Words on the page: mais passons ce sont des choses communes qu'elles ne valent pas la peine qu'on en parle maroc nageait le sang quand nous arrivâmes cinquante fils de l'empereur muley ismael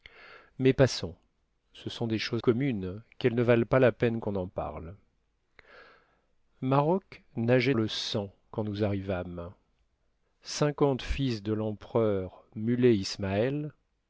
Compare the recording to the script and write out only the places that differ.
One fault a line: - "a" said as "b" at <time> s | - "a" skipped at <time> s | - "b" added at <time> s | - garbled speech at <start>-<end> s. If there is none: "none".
none